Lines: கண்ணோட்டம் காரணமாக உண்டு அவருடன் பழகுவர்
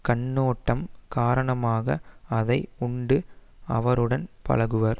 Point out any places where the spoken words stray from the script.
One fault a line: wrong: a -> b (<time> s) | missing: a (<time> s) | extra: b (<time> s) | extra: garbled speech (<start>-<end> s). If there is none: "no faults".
extra: அதை (2.3 s)